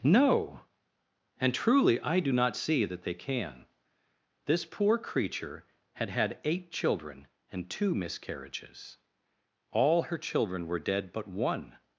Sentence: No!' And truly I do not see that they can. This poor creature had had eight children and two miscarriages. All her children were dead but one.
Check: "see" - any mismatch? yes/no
no